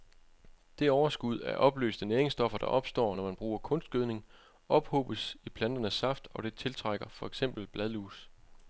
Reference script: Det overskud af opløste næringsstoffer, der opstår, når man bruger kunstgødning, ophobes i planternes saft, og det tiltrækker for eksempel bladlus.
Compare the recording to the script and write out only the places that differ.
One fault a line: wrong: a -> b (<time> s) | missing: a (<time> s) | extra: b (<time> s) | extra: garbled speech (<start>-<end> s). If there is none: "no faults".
no faults